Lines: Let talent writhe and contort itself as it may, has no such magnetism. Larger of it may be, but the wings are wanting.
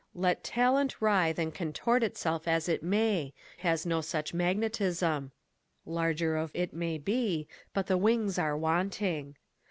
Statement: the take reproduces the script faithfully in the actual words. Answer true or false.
true